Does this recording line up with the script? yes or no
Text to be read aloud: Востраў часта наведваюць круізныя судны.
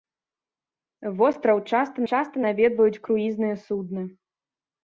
no